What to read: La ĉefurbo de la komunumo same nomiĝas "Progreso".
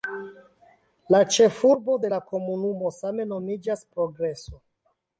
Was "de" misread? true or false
false